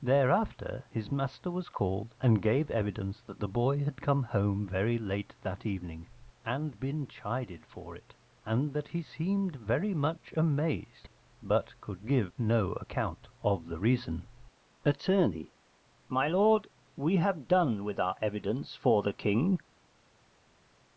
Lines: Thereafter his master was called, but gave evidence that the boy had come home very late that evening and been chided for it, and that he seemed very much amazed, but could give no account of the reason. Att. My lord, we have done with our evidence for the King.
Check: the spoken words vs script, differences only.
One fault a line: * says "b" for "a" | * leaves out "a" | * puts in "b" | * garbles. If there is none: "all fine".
* says "and" for "but"